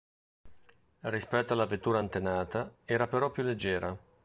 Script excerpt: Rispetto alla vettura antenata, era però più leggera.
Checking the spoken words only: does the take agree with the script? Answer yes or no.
yes